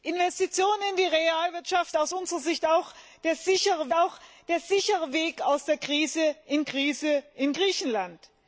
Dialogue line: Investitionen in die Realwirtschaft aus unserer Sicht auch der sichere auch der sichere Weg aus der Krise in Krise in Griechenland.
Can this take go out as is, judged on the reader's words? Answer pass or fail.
pass